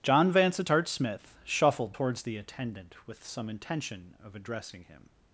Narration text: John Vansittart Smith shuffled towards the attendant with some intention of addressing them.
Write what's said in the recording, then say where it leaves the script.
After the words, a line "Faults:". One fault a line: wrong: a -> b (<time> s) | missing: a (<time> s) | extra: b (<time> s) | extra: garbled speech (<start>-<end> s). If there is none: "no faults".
John Vansittart Smith shuffled towards the attendant with some intention of addressing him.
Faults:
wrong: them -> him (4.9 s)